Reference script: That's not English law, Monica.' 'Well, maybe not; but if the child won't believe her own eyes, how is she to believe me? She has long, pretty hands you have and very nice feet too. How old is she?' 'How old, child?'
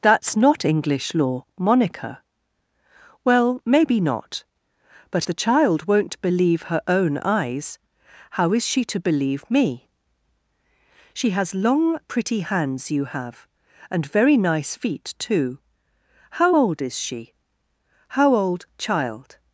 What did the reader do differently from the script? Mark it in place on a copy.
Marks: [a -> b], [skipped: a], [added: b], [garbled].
That's not English law, Monica.' 'Well, maybe not; but [skipped: if] the child won't believe her own eyes, how is she to believe me? She has long, pretty hands you have and very nice feet too. How old is she?' 'How old, child?'